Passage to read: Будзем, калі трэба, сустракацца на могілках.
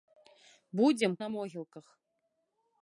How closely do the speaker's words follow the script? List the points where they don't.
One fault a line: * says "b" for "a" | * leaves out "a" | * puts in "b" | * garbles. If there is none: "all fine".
* leaves out "калі трэба сустракацца"